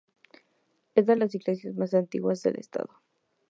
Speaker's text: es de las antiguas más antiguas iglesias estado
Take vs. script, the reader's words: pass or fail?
fail